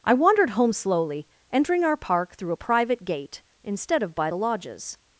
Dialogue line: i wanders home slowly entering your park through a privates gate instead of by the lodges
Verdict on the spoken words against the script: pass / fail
fail